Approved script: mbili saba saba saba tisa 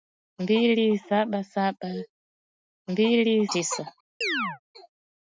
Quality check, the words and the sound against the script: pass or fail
fail